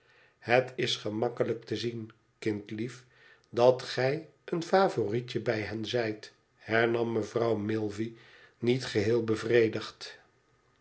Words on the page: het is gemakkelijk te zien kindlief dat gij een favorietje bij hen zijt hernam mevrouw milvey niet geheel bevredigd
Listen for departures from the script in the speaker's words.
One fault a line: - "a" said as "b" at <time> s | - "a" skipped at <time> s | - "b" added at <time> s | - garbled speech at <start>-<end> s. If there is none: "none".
none